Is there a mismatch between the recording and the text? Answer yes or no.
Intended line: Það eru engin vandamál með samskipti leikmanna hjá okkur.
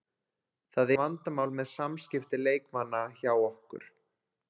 yes